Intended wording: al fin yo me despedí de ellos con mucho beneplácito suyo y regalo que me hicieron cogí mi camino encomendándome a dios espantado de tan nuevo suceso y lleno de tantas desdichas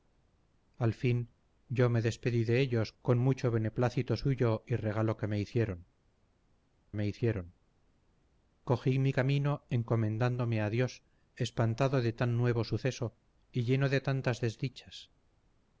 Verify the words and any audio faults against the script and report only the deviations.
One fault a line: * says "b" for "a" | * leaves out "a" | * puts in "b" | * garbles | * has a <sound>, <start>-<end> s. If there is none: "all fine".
* puts in "me hicieron"